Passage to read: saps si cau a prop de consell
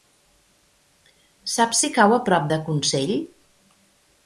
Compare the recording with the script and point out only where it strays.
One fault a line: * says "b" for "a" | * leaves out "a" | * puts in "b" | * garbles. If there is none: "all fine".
all fine